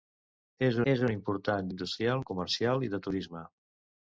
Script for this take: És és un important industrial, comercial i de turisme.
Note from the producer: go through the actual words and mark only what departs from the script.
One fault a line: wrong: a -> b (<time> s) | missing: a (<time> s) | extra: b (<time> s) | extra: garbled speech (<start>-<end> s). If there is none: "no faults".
no faults